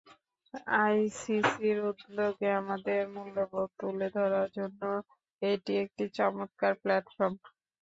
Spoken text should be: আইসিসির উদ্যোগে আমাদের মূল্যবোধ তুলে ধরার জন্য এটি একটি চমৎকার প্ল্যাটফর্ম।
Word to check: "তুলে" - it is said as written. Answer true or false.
true